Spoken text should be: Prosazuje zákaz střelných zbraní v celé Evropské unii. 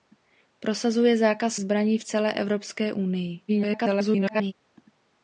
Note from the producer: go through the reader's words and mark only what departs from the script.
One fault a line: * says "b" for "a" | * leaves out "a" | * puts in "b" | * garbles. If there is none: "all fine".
* leaves out "střelných"
* garbles